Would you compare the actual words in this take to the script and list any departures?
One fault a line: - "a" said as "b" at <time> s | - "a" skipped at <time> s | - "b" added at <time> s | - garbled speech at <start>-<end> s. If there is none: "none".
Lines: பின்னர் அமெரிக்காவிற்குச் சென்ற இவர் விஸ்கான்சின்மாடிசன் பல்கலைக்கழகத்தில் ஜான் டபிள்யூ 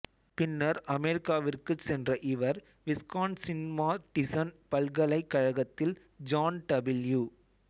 none